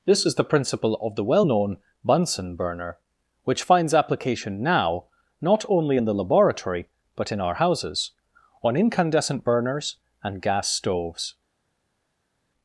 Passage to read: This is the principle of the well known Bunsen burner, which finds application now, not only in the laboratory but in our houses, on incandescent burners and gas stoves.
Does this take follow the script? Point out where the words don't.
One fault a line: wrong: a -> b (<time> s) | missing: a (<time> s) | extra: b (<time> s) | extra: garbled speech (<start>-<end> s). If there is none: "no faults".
no faults